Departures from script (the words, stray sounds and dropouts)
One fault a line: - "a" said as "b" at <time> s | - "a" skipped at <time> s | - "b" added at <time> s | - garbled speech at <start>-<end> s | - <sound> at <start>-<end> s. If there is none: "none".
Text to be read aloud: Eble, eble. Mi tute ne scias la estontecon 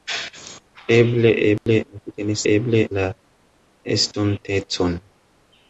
- dropout at 1.6-1.7 s
- "scias" said as "eble" at 2.5 s